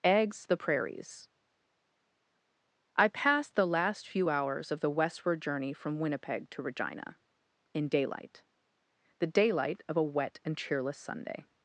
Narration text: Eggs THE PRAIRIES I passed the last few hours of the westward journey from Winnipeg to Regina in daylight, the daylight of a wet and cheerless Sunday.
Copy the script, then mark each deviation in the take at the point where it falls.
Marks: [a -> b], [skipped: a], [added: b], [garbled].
Eggs THE PRAIRIES I passed the last few hours of the westward journey from Winnipeg to Regina in daylight, the daylight of a wet and cheerless Sunday.